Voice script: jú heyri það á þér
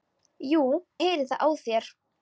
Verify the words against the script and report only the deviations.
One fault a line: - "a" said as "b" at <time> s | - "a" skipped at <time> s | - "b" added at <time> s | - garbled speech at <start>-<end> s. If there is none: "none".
none